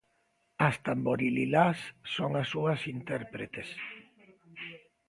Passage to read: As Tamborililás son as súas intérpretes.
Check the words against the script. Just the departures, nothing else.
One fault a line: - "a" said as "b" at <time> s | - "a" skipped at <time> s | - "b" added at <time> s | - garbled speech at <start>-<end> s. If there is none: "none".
none